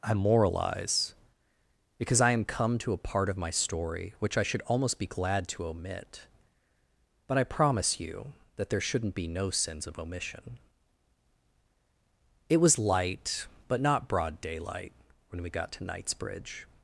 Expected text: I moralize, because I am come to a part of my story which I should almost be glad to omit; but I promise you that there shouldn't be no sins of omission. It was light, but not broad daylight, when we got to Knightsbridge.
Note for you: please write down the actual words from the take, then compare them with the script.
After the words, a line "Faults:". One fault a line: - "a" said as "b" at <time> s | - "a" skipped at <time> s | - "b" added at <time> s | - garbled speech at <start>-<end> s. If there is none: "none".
I moralize, because I am come to a part of my story which I should almost be glad to omit; but I promise you that there shouldn't be no sins of omission. It was light, but not broad daylight, when we got to Knightsbridge.
Faults:
none